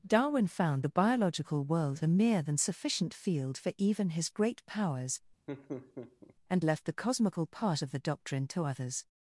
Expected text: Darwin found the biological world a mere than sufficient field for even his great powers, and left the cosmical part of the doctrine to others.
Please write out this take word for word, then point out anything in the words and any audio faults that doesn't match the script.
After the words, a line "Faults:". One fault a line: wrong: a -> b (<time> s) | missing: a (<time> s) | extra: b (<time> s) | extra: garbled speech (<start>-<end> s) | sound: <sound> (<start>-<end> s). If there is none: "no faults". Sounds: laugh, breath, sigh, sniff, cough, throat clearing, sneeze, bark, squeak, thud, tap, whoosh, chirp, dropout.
Darwin found the biological world a mere than sufficient field for even his great powers, and left the cosmical part of the doctrine to others.
Faults:
sound: laugh (5.5-6.3 s)